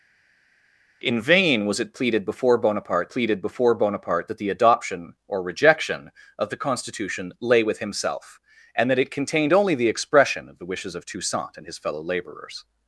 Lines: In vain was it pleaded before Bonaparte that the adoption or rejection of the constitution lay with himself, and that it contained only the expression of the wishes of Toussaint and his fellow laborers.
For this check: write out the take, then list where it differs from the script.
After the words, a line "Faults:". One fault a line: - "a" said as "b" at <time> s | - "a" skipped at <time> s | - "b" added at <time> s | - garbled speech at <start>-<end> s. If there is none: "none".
In vain was it pleaded before Bonaparte pleaded before Bonaparte that the adoption or rejection of the constitution lay with himself, and that it contained only the expression of the wishes of Toussaint and his fellow laborers.
Faults:
- "pleaded before Bonaparte" added at 3.1 s